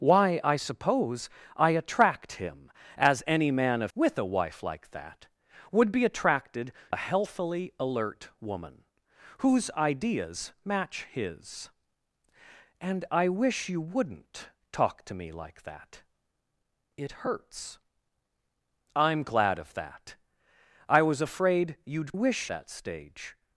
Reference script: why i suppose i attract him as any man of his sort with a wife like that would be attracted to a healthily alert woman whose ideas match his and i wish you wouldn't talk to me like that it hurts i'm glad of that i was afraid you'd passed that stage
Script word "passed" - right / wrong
wrong